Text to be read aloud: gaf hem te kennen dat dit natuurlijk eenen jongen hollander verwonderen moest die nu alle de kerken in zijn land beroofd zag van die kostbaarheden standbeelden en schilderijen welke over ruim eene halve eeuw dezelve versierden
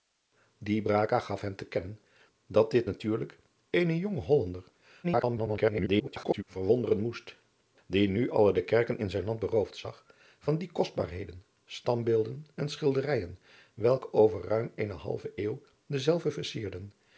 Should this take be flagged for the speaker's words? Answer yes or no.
yes